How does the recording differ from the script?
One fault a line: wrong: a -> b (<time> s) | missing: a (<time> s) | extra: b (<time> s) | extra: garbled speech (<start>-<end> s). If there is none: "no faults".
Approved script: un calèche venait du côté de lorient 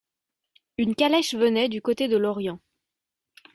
wrong: un -> une (0.8 s)